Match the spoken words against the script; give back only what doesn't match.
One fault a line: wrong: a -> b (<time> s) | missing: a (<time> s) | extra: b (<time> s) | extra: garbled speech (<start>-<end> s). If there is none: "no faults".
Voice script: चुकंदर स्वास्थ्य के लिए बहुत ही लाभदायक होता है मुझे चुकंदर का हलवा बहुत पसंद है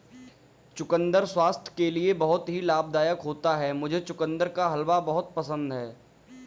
no faults